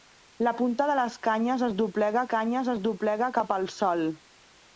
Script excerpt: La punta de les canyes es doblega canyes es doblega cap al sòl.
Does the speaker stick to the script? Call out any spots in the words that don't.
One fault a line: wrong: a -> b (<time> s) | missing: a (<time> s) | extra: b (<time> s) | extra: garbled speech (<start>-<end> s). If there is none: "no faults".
no faults